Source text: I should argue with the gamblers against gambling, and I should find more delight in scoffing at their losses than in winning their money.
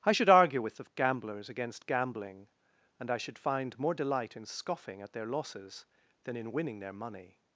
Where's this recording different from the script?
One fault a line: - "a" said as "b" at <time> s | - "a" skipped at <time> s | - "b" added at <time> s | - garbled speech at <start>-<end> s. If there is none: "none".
none